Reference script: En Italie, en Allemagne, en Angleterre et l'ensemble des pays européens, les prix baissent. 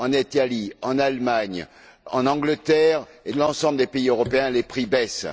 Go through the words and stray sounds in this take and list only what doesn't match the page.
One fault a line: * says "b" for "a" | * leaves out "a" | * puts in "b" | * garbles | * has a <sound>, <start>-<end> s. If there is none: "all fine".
all fine